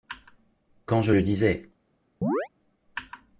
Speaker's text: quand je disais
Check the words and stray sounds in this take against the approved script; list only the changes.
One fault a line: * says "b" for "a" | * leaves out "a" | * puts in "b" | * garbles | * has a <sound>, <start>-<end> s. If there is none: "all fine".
* puts in "le"
* has a chirp, 2.2-2.5 s